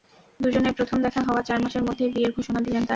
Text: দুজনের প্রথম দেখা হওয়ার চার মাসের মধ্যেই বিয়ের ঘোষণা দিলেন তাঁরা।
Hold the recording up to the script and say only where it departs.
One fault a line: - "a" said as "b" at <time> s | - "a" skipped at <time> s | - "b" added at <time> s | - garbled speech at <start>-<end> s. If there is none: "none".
none